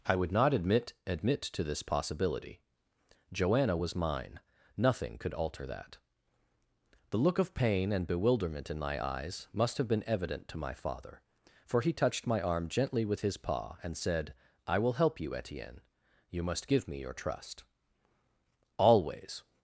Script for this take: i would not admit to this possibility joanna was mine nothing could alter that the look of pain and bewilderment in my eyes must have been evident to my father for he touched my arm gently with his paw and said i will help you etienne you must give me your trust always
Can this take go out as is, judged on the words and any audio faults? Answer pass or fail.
fail